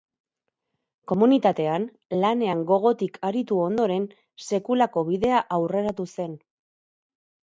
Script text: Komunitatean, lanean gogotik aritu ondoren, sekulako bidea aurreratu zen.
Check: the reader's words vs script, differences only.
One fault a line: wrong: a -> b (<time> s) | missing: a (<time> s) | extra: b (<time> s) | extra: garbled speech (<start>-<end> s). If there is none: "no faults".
no faults